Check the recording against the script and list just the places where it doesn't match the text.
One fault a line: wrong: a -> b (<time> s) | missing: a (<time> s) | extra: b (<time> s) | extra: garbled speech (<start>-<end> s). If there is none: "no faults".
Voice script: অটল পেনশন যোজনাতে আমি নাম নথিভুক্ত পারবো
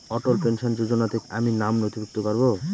no faults